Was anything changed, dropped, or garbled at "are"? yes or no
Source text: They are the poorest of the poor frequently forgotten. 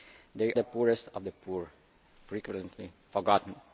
yes